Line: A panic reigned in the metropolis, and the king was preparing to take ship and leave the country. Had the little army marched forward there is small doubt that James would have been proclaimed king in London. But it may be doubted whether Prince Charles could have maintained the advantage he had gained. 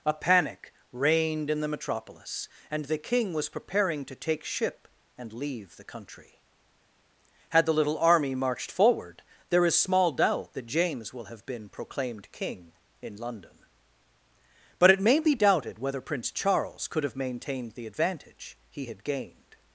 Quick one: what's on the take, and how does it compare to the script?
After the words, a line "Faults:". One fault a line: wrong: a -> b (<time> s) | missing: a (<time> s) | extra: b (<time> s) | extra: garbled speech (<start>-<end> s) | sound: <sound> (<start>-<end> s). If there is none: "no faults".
A panic reigned in the metropolis, and the king was preparing to take ship and leave the country. Had the little army marched forward there is small doubt that James will have been proclaimed king in London. But it may be doubted whether Prince Charles could have maintained the advantage he had gained.
Faults:
wrong: would -> will (11.1 s)